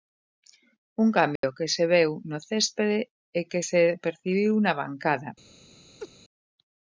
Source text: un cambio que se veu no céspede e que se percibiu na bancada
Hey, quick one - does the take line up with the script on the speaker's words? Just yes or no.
yes